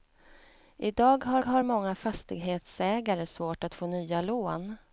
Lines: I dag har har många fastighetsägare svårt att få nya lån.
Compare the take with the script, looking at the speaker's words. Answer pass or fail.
pass